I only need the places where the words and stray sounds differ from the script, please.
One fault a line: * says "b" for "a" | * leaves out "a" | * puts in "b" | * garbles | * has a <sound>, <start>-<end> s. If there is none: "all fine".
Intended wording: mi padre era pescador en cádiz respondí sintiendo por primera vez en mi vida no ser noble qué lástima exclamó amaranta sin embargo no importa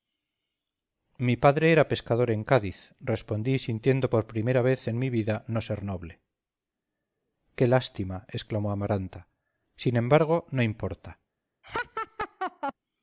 * has a laugh, 11.6-12.7 s